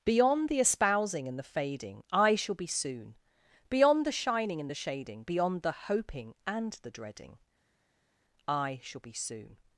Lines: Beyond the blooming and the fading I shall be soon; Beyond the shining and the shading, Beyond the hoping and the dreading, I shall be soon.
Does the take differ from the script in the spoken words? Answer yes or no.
yes